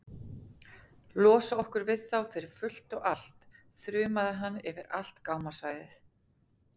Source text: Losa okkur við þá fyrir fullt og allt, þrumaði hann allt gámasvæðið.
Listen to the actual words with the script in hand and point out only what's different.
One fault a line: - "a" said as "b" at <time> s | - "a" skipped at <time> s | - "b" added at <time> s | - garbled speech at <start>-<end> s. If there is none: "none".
- "yfir" added at 4.7 s